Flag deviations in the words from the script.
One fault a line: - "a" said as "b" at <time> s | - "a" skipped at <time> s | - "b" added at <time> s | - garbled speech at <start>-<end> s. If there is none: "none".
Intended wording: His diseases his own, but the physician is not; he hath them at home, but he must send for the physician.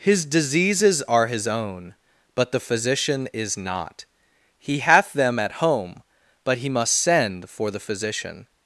- "are" added at 1.0 s